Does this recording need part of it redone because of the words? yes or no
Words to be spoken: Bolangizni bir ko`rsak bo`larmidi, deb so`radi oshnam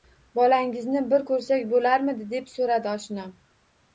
no